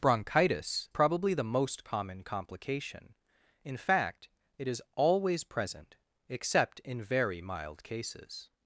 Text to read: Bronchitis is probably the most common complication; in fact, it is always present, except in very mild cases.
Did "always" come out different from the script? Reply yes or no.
no